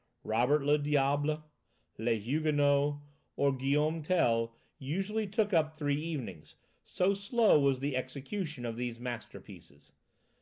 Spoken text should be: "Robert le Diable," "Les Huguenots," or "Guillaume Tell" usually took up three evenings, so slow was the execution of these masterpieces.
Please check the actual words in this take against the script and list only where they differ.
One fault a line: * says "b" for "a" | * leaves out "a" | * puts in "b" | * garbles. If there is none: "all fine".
all fine